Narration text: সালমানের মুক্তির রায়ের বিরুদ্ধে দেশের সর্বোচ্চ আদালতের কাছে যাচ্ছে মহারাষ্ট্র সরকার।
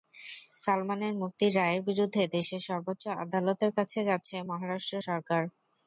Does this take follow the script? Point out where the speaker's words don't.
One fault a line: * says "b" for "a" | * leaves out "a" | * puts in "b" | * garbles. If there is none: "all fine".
all fine